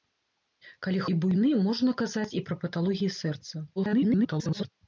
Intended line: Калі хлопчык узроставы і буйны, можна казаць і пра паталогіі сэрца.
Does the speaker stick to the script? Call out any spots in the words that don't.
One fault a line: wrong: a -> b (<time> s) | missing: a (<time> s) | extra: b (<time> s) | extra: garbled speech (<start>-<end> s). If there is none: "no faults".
missing: хлопчык узроставы (1.0 s)
extra: garbled speech (3.8-4.7 s)